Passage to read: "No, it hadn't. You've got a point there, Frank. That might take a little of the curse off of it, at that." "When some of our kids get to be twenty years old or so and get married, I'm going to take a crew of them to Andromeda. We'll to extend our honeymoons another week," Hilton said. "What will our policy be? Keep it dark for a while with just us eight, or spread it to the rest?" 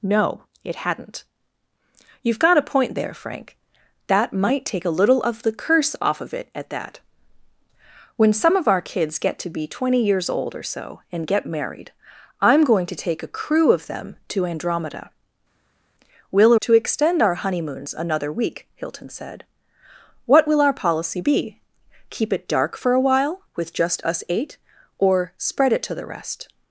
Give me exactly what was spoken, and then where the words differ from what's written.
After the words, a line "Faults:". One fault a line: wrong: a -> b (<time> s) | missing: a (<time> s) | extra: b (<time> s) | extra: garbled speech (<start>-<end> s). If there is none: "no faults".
"No, it hadn't. You've got a point there, Frank. That might take a little of the curse off of it, at that." "When some of our kids get to be twenty years old or so and get married, I'm going to take a crew of them to Andromeda. We'll to extend our honeymoons another week," Hilton said. "What will our policy be? Keep it dark for a while with just us eight, or spread it to the rest?"
Faults:
no faults